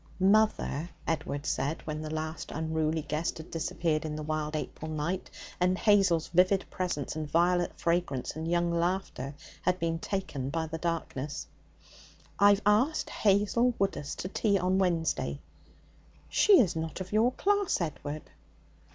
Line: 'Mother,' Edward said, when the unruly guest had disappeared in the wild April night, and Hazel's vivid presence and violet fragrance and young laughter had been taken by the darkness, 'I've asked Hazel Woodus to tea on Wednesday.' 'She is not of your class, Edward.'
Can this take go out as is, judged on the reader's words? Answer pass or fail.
fail